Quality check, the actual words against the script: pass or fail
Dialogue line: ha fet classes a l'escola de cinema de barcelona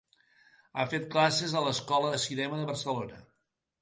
pass